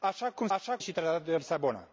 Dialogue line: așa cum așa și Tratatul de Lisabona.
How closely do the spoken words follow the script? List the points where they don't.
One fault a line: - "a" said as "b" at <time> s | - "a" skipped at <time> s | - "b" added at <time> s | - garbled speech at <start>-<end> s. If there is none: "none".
none